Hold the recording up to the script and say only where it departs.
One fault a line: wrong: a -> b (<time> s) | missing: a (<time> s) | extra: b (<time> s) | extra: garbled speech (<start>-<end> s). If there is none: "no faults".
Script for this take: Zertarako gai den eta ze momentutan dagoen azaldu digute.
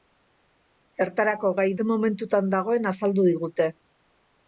missing: den eta (1.7 s)